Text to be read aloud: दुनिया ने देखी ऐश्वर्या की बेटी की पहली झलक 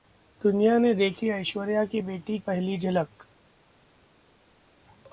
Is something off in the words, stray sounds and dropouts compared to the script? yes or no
yes